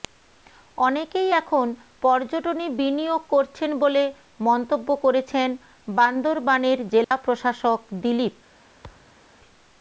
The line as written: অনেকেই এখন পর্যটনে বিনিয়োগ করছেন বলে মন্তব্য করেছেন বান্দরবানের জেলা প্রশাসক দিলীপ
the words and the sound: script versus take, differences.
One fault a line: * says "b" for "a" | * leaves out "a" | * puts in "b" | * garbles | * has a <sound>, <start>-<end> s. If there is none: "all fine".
* has a dropout, 7.0-7.1 s
* has a thud, 8.8-9.2 s